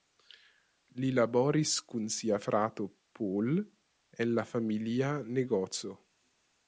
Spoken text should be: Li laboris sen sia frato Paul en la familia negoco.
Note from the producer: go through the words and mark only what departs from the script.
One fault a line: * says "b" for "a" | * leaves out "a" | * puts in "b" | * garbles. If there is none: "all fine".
* says "kun" for "sen"